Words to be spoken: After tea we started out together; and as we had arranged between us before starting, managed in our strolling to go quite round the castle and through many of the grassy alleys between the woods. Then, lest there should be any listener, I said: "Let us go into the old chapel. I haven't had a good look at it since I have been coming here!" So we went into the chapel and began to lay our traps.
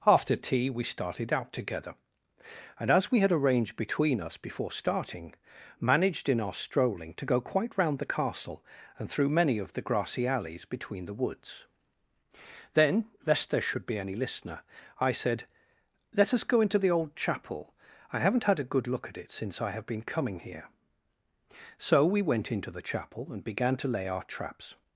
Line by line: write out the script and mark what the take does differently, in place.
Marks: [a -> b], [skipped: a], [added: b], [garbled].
After tea we started out together; and as we had arranged between us before starting, managed in our strolling to go quite round the castle and through many of the grassy alleys between the woods. Then, lest there should be any listener, I said: "Let us go into the old chapel. I haven't had a good look at it since I have been coming here!" So we went into the chapel and began to lay our traps.